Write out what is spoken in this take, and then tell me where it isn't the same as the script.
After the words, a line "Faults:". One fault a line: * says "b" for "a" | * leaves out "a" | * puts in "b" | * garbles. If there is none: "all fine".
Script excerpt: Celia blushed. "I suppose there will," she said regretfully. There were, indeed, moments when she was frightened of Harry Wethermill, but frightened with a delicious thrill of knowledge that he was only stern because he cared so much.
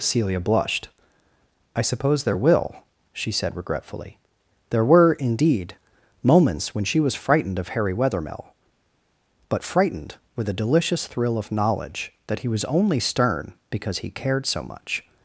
Celia blushed. "I suppose there will," she said regretfully. There were, indeed, moments when she was frightened of Harry Wethermill, but frightened with a delicious thrill of knowledge that he was only stern because he cared so much.
Faults:
all fine